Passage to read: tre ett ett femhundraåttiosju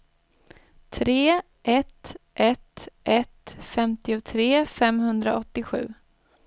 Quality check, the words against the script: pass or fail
fail